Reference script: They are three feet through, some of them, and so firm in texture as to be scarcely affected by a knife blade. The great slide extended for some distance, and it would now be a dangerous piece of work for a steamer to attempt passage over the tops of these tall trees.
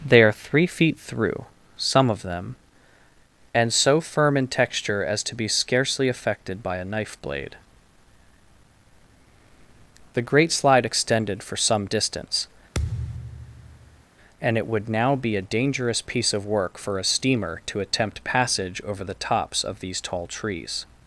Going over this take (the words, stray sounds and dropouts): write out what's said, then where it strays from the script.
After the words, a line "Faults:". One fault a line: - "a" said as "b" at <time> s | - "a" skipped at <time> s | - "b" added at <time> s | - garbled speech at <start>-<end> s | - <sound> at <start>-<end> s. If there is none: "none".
They are three feet through, some of them, and so firm in texture as to be scarcely affected by a knife blade. The great slide extended for some distance, and it would now be a dangerous piece of work for a steamer to attempt passage over the tops of these tall trees.
Faults:
- thud at 12.7-14.0 s